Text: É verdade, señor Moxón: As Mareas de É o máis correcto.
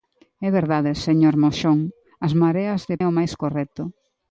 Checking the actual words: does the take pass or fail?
pass